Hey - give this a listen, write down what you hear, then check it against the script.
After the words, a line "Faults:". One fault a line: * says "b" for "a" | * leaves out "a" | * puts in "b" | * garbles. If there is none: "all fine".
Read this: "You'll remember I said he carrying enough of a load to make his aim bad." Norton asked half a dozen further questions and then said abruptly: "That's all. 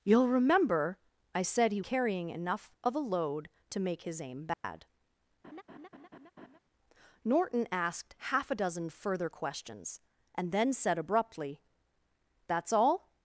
"You'll remember I said he carrying enough of a load to make his aim bad." Norton asked half a dozen further questions and then said abruptly: "That's all.
Faults:
all fine